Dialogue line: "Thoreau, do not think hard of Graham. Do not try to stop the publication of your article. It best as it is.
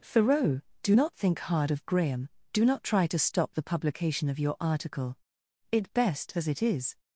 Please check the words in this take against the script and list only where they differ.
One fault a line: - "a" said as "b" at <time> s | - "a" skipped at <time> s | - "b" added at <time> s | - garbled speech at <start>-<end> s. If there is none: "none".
none